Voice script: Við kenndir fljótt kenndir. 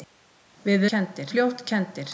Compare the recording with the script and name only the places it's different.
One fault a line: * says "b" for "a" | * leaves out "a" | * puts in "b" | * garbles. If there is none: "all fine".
all fine